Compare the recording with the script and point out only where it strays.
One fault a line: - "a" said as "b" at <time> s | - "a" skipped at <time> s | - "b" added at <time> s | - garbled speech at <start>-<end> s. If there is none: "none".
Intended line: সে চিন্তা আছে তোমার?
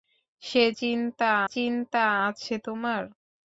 - "চিন্তা" added at 1.5 s